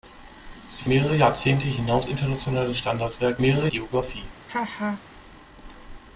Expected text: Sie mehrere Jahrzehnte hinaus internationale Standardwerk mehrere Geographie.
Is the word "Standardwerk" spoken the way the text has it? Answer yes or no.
yes